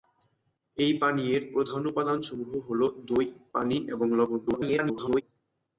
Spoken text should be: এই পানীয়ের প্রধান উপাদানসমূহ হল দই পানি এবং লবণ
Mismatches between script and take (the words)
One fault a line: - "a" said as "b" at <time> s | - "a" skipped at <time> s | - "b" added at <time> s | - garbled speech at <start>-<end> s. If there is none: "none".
- garbled speech at 4.5-5.2 s